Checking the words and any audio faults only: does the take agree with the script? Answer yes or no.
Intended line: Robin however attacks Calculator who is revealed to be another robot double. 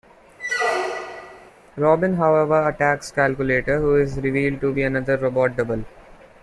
no